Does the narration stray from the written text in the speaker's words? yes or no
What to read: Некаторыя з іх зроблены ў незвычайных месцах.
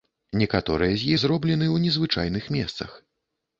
yes